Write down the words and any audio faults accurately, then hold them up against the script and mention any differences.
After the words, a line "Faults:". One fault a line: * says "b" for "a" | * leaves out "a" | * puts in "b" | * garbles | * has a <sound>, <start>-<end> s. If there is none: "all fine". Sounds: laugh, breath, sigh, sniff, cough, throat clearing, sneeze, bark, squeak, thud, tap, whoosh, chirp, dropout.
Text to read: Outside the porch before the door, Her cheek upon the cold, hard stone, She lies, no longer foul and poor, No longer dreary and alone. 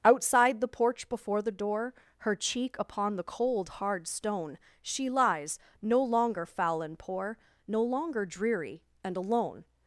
Outside the porch before the door, Her cheek upon the cold, hard stone, She lies, no longer foul and poor, No longer dreary and alone.
Faults:
all fine